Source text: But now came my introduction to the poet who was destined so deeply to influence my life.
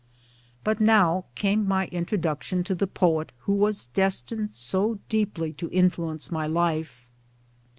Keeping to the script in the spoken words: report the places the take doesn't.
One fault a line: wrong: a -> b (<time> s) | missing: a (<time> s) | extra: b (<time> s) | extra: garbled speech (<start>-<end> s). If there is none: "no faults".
no faults